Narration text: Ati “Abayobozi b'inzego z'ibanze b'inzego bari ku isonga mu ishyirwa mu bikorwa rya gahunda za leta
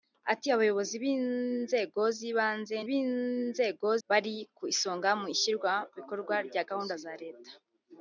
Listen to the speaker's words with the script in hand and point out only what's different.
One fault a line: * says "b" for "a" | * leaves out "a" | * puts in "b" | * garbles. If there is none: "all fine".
all fine